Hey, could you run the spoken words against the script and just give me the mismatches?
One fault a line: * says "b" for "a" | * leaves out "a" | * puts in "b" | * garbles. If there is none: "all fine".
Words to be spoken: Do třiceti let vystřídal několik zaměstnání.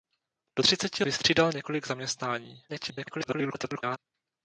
* leaves out "let"
* garbles